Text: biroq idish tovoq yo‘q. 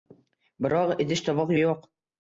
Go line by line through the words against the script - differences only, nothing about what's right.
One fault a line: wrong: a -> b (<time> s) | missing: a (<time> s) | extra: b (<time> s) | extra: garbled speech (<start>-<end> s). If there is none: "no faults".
no faults